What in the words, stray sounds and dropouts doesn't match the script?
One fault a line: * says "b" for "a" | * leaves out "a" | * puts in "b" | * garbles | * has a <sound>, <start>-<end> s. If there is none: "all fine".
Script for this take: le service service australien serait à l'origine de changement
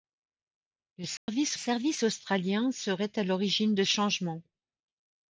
* has a dropout, 1.2-1.3 s